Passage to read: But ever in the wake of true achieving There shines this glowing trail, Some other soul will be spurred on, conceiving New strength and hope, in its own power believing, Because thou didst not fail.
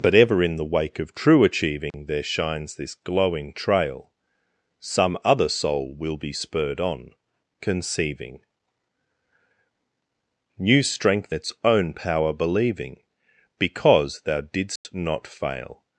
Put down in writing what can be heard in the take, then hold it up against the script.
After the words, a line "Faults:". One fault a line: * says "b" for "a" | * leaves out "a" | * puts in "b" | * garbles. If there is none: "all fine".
But ever in the wake of true achieving There shines this glowing trail, Some other soul will be spurred on, conceiving New strength its own power believing, Because thou didst not fail.
Faults:
* leaves out "and hope in"